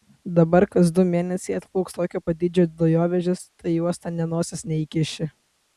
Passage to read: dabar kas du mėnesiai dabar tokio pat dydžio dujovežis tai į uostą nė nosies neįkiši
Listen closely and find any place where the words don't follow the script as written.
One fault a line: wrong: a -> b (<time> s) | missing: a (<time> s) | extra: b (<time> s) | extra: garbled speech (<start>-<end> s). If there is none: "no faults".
wrong: dabar -> atplauks (1.6 s)